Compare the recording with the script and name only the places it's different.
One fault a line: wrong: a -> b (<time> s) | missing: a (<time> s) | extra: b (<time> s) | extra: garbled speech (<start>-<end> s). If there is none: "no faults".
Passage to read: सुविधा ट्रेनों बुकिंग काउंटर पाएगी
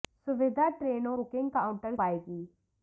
no faults